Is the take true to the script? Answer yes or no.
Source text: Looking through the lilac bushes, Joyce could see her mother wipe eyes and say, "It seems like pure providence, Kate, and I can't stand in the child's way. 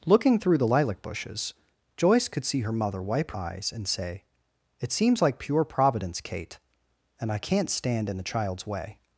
yes